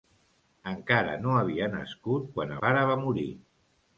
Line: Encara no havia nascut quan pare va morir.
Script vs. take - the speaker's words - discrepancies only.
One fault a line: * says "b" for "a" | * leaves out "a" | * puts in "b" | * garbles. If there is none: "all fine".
all fine